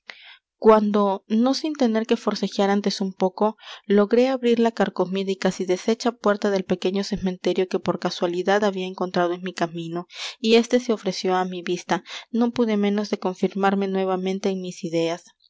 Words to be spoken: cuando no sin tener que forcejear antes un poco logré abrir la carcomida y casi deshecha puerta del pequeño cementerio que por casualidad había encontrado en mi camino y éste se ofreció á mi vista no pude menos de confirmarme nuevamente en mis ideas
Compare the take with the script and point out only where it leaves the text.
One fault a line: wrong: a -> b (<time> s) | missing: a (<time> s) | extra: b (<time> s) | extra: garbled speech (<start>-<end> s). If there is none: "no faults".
no faults